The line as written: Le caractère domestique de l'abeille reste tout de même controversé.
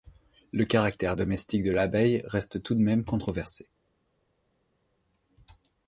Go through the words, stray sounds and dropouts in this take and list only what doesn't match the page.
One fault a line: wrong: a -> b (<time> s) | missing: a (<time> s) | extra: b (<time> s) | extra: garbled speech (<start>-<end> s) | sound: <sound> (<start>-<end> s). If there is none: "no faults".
no faults